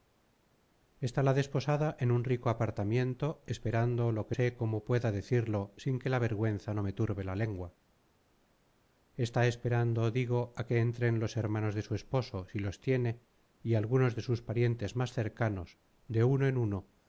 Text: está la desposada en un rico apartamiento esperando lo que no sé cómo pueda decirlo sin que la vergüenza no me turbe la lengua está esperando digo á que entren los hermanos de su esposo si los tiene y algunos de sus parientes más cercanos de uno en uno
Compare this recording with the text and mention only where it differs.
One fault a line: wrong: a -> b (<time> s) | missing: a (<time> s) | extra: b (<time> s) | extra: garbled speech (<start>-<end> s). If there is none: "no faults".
missing: no (4.4 s)